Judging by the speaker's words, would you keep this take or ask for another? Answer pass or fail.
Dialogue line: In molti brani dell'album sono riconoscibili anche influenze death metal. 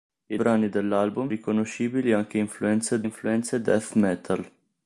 fail